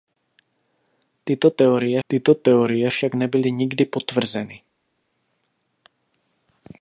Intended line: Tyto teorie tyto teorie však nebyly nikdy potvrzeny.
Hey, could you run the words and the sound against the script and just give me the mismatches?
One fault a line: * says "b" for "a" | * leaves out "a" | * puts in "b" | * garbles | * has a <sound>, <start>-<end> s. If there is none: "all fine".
all fine